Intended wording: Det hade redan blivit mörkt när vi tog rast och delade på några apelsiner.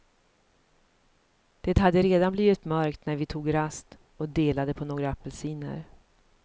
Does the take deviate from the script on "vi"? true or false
false